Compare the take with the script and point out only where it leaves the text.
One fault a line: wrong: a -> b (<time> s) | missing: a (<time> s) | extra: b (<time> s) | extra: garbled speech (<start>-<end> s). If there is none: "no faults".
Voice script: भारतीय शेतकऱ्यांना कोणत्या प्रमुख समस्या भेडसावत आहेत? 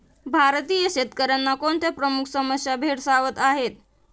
no faults